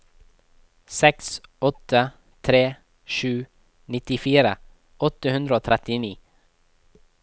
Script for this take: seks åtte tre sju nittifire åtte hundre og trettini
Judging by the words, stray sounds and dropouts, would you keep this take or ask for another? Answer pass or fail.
pass